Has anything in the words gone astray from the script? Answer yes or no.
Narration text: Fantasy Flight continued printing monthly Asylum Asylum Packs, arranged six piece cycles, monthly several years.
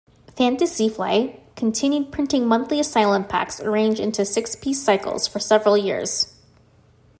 yes